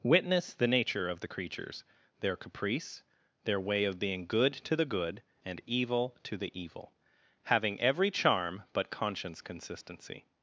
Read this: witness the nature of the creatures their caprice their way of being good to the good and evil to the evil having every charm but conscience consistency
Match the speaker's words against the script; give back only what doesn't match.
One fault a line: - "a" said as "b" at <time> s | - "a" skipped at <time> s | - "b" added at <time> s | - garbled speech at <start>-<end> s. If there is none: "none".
none